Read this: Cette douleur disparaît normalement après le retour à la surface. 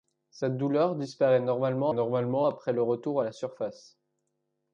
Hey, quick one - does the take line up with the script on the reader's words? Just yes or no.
no